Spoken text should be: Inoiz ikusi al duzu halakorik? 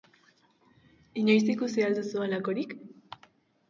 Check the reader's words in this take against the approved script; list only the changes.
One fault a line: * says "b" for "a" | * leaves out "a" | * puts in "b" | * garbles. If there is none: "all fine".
all fine